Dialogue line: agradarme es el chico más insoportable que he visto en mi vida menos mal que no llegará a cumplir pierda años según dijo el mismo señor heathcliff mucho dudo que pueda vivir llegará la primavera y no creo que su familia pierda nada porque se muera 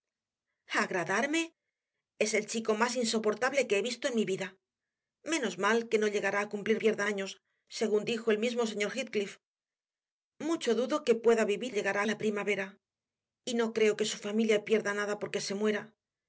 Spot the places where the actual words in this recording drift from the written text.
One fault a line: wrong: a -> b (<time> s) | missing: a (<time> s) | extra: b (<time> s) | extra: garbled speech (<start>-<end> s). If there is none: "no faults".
no faults